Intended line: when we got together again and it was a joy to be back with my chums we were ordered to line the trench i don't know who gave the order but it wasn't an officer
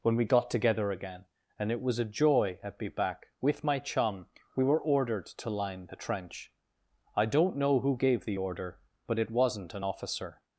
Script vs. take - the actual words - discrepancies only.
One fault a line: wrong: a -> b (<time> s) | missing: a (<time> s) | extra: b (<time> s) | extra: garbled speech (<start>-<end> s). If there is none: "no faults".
wrong: to -> at (2.6 s)
wrong: chums -> chum (3.8 s)